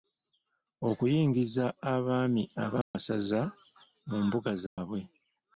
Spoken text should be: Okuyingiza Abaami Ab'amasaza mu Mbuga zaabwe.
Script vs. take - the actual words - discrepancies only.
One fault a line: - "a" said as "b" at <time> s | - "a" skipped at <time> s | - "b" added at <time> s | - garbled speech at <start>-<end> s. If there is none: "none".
none